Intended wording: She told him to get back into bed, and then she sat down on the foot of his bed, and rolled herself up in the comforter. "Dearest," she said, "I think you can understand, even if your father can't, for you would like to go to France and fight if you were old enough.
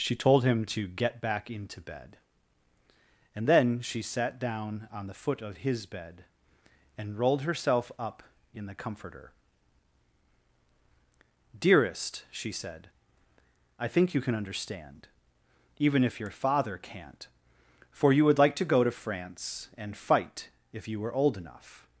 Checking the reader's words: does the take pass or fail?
pass